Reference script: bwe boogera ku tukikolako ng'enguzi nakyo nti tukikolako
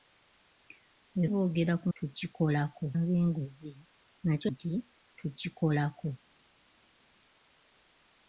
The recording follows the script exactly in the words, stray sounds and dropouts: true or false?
true